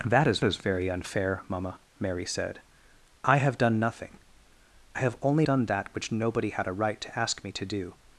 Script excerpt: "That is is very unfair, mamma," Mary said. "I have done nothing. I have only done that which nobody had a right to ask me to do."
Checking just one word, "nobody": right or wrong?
right